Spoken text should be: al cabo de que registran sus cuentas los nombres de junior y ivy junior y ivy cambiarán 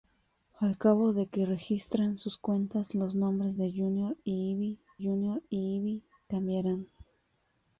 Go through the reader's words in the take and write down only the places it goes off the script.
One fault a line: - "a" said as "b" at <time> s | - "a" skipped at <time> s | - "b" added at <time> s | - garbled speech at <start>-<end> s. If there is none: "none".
none